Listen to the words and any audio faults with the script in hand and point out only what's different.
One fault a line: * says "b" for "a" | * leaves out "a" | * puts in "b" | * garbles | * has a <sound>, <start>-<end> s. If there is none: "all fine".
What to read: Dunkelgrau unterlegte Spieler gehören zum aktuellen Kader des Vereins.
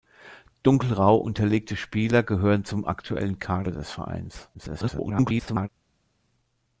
* garbles